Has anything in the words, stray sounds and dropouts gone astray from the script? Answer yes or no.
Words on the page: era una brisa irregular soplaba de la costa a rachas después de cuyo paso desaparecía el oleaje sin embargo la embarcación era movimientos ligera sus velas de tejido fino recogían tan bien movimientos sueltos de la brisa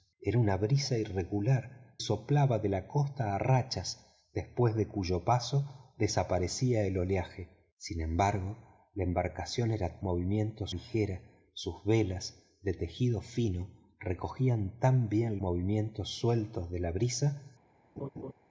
yes